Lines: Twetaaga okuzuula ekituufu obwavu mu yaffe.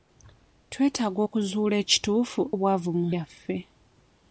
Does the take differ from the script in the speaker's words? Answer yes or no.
no